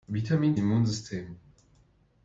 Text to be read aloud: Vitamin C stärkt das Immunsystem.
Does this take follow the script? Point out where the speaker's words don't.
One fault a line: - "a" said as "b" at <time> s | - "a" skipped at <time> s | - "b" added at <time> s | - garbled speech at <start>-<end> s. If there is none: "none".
- "C stärkt das" skipped at 0.6 s